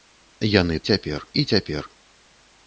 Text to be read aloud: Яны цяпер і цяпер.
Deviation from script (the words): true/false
false